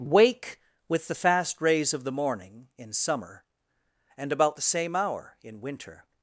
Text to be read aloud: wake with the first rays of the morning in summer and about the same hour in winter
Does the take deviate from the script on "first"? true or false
true